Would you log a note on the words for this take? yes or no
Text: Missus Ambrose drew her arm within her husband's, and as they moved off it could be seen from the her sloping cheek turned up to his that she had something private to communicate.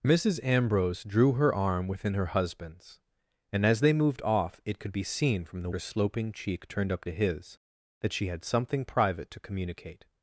no